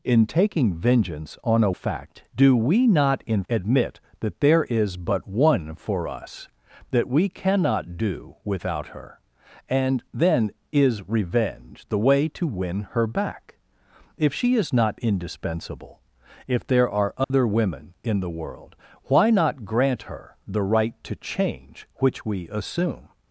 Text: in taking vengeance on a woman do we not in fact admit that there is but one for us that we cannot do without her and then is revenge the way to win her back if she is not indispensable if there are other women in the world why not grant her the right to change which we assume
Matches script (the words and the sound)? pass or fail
fail